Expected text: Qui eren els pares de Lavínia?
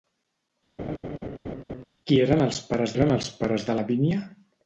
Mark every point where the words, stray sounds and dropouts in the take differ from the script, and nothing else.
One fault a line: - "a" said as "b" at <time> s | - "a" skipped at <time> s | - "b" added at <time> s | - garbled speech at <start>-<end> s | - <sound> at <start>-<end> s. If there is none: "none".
- laugh at 0.8-1.8 s
- "eren els pares" added at 2.9 s